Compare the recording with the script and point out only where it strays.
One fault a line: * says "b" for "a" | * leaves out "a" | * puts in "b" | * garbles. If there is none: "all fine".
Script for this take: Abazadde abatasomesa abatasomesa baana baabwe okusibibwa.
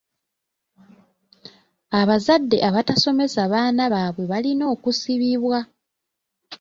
* leaves out "abatasomesa"
* puts in "balina"